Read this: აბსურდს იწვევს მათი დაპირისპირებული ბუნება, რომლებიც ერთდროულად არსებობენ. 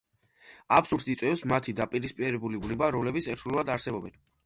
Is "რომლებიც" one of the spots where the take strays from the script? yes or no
no